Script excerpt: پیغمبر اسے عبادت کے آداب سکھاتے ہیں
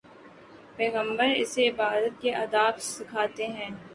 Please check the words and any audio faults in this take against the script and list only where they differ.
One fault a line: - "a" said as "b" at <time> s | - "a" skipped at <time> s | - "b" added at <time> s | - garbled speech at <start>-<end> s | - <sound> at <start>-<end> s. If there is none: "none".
none